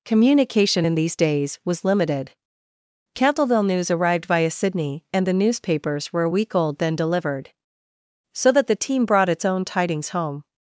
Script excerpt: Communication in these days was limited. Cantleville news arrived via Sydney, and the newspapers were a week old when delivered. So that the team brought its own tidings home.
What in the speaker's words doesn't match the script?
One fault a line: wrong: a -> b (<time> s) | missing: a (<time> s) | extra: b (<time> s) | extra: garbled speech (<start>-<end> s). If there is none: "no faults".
wrong: when -> then (6.8 s)